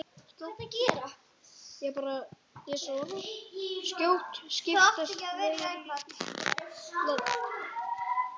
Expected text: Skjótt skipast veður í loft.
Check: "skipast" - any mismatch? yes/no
no